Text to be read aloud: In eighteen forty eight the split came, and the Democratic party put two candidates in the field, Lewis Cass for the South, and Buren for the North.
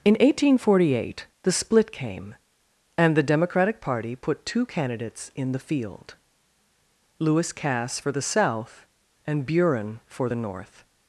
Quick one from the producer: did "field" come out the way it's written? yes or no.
yes